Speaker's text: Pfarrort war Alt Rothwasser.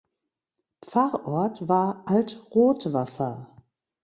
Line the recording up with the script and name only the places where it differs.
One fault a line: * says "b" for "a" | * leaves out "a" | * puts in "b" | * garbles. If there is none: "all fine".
all fine